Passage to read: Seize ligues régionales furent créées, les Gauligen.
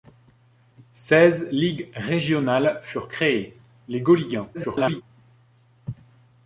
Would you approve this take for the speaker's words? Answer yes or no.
no